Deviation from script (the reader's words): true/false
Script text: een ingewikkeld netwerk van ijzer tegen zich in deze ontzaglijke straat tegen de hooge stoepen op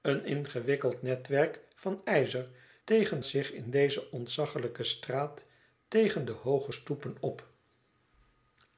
false